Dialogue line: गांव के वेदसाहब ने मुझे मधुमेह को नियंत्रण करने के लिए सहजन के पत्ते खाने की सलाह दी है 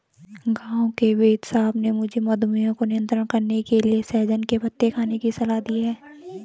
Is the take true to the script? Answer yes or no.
yes